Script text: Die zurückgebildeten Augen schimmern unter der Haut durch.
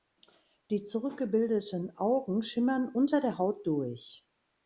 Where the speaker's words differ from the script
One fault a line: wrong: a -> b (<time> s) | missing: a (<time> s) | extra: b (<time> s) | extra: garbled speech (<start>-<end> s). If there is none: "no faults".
no faults